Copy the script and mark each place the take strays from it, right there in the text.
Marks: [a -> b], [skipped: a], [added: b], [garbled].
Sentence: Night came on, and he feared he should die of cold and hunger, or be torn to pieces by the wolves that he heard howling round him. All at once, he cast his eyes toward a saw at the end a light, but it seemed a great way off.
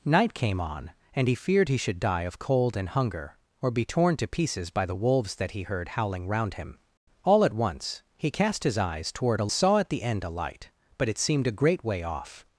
Night came on, and he feared he should die of cold and hunger, or be torn to pieces by the wolves that he heard howling round him. All at once, he cast his eyes toward a saw at the end a light, but it seemed a great way off.